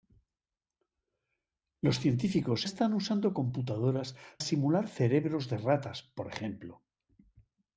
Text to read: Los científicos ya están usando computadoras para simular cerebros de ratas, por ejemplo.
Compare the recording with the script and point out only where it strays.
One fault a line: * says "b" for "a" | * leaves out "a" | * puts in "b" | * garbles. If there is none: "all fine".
* leaves out "ya"
* leaves out "para"